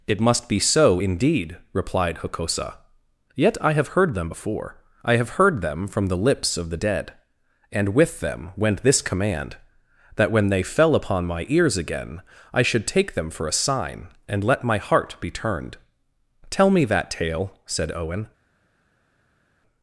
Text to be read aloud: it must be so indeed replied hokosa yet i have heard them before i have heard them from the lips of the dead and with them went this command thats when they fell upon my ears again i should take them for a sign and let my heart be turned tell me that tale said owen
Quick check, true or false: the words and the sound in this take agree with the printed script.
false